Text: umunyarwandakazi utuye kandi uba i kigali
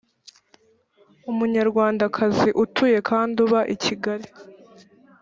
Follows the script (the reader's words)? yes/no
yes